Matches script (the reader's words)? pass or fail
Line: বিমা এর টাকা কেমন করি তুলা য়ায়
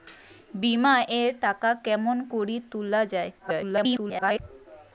fail